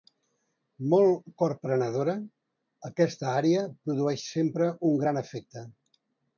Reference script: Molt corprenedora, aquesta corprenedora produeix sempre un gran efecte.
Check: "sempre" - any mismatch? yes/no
no